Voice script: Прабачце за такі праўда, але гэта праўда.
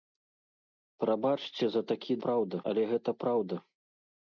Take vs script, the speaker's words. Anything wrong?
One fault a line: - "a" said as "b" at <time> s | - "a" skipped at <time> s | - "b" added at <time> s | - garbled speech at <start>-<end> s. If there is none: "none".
none